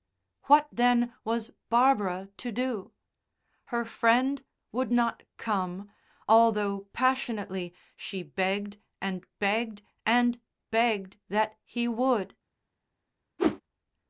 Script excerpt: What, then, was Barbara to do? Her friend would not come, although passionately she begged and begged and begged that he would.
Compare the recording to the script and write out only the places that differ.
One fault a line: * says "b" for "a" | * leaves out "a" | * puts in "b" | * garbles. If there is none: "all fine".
all fine